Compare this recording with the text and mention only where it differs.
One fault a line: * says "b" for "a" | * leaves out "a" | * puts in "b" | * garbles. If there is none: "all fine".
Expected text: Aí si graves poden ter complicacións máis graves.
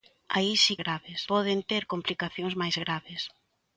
all fine